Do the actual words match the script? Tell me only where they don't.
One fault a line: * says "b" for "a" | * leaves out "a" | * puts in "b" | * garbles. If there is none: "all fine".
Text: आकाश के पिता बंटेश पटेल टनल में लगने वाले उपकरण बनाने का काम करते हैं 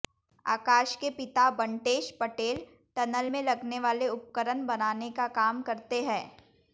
all fine